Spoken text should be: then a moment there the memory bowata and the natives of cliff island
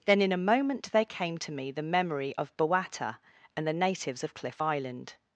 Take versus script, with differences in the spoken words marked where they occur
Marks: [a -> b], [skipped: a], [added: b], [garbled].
then [added: in] a moment there [added: came to me] the memory [added: of] bowata and the natives of cliff island